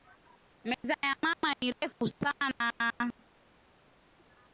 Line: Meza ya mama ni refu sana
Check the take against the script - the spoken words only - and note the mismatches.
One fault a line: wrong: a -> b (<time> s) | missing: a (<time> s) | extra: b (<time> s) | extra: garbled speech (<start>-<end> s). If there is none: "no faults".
no faults